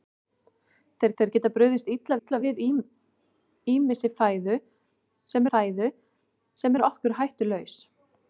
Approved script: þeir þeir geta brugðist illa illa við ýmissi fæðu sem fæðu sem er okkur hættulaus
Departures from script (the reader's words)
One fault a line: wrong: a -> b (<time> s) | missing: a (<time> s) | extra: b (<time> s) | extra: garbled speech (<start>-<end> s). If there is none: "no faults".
no faults